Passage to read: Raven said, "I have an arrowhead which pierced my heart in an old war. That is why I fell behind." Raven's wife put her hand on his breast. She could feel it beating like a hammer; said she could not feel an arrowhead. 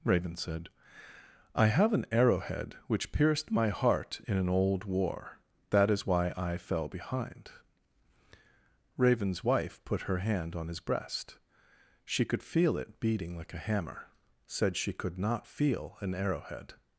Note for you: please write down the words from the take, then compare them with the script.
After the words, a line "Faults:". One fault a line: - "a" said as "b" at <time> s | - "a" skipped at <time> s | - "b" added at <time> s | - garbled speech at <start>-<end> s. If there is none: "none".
Raven said, "I have an arrowhead which pierced my heart in an old war. That is why I fell behind." Raven's wife put her hand on his breast. She could feel it beating like a hammer; said she could not feel an arrowhead.
Faults:
none